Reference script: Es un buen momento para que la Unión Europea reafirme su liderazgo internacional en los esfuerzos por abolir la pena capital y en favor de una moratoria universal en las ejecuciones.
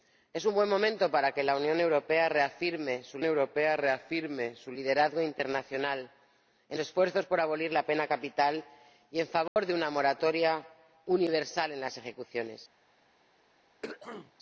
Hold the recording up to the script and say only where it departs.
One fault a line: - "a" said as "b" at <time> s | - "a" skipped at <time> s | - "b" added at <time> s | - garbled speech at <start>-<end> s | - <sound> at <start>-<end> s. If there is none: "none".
- "Europea reafirme su" added at 3.2 s
- "los" skipped at 6.8 s
- dropout at 9.5-9.6 s
- throat clearing at 13.8-14.3 s